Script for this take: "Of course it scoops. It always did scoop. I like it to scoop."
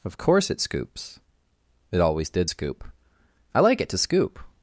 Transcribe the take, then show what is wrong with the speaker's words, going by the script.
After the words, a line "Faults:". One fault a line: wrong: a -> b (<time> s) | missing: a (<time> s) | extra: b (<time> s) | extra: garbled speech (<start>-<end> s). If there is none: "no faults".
"Of course it scoops. It always did scoop. I like it to scoop."
Faults:
no faults